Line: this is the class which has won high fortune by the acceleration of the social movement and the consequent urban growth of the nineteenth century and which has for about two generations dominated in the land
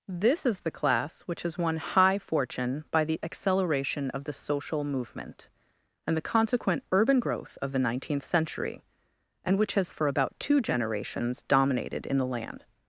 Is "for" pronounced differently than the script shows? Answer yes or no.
no